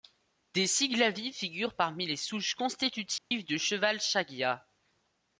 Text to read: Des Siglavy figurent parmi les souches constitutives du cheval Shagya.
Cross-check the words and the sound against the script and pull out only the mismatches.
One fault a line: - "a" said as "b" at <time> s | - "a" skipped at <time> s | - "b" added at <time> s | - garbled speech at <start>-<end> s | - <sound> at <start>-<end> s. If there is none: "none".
- dropout at 3.2-3.3 s